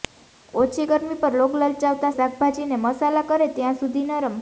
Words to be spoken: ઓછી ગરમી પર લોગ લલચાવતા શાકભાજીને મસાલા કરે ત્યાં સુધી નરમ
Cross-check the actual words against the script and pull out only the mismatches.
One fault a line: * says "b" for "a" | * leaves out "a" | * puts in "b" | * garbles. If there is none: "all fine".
all fine